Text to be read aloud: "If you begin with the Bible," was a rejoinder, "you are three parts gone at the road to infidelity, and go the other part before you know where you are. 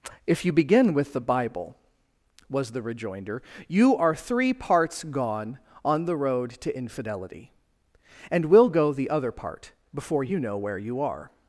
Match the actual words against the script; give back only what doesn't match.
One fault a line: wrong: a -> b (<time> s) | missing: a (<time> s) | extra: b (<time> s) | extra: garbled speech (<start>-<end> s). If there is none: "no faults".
wrong: a -> the (2.7 s)
wrong: at -> on (5.8 s)
extra: will (8.5 s)